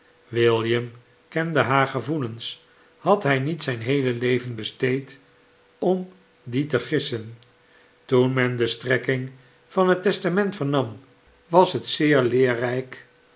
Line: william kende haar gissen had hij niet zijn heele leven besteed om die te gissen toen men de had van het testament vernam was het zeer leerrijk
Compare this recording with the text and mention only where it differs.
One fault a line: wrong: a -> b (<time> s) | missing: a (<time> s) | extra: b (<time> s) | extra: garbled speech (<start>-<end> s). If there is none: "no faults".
wrong: gissen -> gevoelens (1.9 s)
wrong: had -> strekking (8.7 s)